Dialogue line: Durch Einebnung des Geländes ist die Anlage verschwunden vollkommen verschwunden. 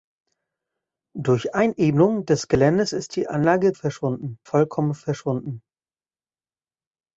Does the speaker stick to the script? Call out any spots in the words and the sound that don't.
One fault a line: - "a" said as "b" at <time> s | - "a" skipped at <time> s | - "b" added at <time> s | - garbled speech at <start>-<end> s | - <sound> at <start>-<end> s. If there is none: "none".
none